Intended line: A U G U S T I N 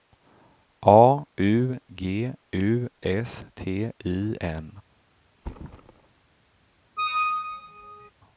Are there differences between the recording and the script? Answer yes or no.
no